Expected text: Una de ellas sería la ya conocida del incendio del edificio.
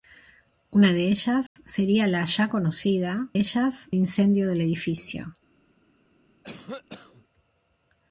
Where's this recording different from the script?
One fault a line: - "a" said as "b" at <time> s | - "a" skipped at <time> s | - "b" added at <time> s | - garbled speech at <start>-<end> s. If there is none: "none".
- "del" said as "ellas" at 3.4 s